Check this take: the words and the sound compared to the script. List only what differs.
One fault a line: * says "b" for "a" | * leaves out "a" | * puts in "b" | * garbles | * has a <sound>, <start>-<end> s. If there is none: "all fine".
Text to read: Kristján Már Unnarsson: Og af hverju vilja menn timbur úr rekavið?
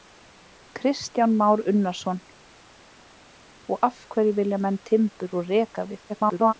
* garbles